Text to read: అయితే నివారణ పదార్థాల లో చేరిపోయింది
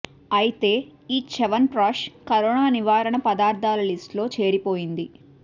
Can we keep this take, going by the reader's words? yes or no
no